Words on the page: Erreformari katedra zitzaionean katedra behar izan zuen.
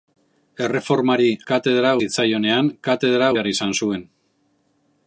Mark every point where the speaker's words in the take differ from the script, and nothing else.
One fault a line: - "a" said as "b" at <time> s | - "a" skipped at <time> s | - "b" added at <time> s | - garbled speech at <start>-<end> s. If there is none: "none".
none